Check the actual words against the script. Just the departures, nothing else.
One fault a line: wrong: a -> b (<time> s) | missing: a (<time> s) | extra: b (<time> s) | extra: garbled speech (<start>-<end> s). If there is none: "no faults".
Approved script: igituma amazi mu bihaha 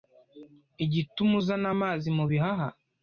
extra: uzana (1.4 s)